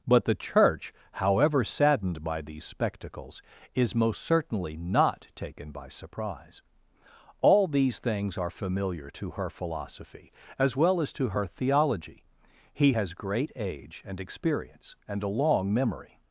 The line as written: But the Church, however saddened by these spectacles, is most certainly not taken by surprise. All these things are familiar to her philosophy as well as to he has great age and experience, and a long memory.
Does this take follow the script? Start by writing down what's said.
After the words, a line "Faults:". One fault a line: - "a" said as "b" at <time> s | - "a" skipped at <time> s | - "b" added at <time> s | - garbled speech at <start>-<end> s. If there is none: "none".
But the Church, however saddened by these spectacles, is most certainly not taken by surprise. All these things are familiar to her philosophy as well as to her theology, he has great age and experience, and a long memory.
Faults:
- "her theology" added at 11.3 s